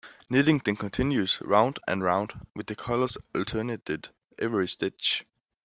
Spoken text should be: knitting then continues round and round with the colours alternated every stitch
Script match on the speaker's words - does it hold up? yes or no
yes